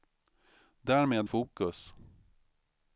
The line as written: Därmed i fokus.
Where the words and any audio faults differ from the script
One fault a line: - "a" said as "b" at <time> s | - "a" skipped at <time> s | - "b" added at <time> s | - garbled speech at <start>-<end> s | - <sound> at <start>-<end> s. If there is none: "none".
none